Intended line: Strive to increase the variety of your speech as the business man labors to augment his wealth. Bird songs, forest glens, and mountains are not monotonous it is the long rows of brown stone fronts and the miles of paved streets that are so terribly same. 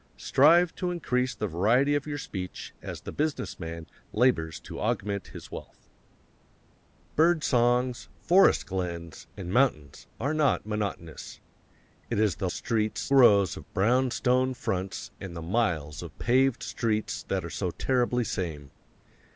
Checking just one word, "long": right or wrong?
wrong